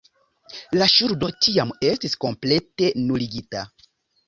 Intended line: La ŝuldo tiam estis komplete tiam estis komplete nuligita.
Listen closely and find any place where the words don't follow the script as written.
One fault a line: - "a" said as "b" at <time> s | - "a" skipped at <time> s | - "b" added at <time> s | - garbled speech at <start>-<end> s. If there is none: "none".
- "tiam estis komplete" skipped at 2.9 s